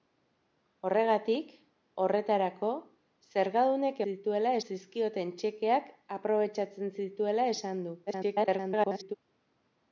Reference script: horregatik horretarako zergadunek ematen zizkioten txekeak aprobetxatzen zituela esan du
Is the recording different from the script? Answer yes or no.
yes